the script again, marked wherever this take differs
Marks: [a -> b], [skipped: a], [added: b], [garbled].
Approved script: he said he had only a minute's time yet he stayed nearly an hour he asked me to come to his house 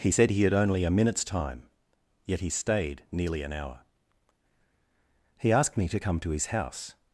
he said he had only a minute's time yet he stayed nearly an hour he asked me to come to his house